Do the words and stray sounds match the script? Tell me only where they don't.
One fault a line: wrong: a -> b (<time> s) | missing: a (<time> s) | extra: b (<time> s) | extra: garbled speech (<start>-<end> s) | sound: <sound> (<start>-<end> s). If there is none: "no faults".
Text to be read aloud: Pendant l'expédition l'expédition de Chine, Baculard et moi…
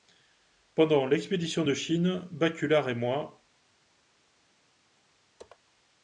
missing: l'expédition (1.6 s)